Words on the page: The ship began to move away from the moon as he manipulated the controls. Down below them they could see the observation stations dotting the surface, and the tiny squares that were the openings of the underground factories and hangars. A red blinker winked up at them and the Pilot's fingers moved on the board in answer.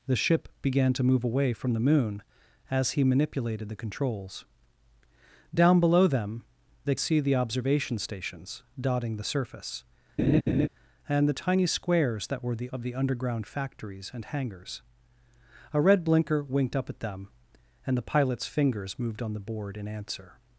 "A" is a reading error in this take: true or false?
false